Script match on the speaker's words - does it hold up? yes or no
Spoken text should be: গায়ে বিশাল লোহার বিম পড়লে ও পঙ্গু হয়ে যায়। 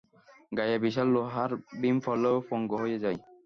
yes